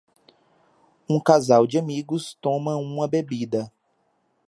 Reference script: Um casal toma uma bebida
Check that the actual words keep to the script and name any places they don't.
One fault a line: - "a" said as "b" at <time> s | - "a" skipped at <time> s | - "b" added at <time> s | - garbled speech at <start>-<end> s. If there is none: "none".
- "de amigos" added at 1.7 s